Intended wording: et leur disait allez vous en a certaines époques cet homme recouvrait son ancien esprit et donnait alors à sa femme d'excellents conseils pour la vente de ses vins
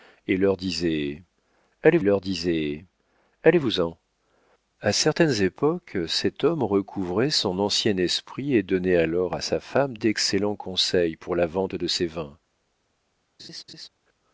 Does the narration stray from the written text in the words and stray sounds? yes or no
yes